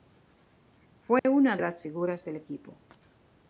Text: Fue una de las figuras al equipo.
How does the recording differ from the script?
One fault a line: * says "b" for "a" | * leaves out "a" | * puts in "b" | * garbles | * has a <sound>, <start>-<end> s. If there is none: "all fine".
* has a dropout, 1.2-1.2 s
* says "del" for "al"